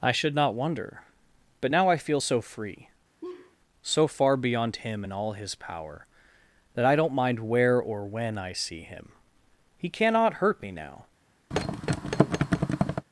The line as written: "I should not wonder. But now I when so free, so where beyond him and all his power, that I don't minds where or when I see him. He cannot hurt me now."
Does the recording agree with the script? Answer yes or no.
no